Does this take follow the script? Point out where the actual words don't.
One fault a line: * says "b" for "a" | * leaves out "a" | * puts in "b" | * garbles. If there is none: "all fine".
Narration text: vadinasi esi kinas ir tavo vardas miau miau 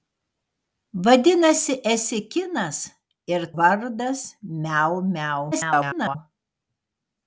* leaves out "tavo"
* garbles